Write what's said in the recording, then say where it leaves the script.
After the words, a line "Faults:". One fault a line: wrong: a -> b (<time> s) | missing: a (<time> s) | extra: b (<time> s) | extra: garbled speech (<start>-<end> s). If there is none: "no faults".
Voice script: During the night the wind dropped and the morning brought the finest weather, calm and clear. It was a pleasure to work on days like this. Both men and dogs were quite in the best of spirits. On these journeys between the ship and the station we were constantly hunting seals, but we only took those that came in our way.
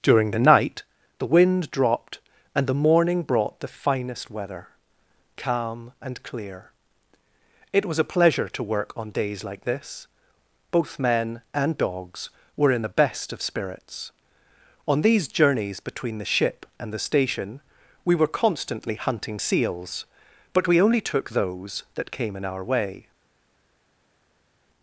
During the night the wind dropped and the morning brought the finest weather, calm and clear. It was a pleasure to work on days like this. Both men and dogs were in the best of spirits. On these journeys between the ship and the station we were constantly hunting seals, but we only took those that came in our way.
Faults:
missing: quite (12.7 s)